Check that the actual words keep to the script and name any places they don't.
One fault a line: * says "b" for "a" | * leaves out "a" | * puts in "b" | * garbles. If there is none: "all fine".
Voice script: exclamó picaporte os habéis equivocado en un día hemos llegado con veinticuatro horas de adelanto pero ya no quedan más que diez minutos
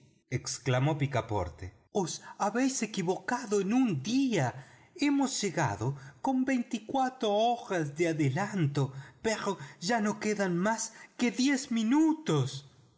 all fine